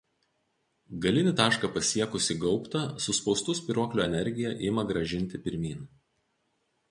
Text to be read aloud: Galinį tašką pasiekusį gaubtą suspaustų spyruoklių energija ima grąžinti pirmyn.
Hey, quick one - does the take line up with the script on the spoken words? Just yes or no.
yes